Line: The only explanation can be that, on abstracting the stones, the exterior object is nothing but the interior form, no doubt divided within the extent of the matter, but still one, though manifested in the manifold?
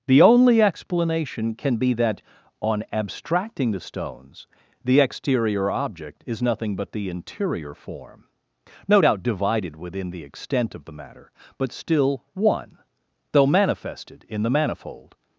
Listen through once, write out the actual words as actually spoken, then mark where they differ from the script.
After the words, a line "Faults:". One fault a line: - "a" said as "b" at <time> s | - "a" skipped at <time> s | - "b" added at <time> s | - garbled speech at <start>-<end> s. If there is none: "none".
The only explanation can be that, on abstracting the stones, the exterior object is nothing but the interior form, no doubt divided within the extent of the matter, but still one, though manifested in the manifold?
Faults:
none